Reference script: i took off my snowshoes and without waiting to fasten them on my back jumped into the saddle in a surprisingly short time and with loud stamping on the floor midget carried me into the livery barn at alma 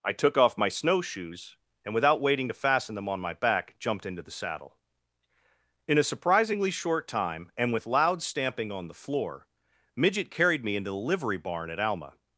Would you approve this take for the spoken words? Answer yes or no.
yes